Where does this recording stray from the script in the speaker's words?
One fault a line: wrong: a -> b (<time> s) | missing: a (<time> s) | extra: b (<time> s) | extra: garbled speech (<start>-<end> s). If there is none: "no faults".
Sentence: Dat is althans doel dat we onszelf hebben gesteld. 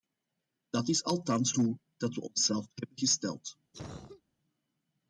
no faults